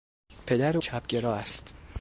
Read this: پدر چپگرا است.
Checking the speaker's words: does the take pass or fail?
pass